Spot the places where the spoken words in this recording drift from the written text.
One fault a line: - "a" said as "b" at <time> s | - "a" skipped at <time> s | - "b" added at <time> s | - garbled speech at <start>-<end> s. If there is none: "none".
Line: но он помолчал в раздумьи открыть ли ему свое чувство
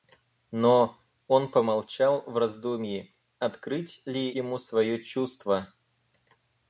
none